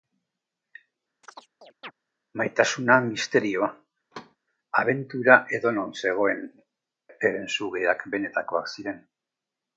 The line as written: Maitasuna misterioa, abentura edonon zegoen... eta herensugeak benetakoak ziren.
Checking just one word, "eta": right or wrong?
wrong